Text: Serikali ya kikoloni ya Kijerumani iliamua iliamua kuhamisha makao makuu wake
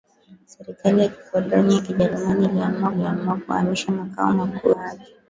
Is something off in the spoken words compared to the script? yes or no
no